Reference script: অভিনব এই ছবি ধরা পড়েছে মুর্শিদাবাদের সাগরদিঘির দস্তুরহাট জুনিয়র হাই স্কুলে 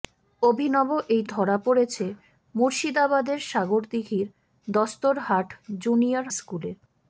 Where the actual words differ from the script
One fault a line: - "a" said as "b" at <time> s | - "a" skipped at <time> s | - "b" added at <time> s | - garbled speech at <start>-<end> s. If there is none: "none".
- "ছবি" skipped at 1.2 s
- "হাই" skipped at 6.3 s